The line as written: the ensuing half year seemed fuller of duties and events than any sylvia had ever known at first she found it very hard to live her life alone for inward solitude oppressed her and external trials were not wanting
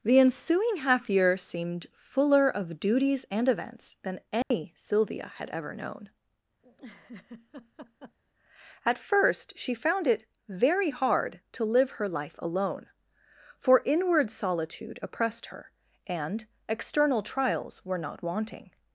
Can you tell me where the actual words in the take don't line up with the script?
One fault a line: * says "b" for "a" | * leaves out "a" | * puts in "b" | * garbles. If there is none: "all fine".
all fine